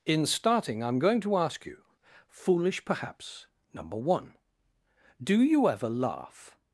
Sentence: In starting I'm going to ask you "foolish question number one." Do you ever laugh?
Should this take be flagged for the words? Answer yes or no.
yes